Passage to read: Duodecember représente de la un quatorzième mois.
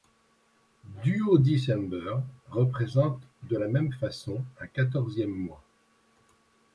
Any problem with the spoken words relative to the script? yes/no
yes